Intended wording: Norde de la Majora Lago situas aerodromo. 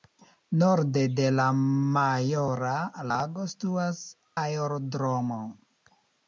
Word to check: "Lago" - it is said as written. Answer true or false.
true